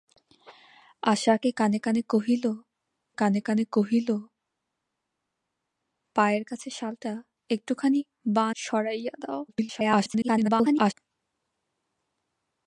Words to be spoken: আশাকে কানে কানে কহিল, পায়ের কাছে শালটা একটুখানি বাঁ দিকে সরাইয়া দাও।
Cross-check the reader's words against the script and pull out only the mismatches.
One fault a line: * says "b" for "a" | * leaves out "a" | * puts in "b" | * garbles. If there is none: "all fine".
* puts in "কানে কানে কহিল"
* leaves out "দিকে"
* garbles